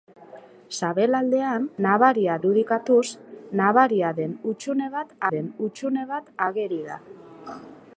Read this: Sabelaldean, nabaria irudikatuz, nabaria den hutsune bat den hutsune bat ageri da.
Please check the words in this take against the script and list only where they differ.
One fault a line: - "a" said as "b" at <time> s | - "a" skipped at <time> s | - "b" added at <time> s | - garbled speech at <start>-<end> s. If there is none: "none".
none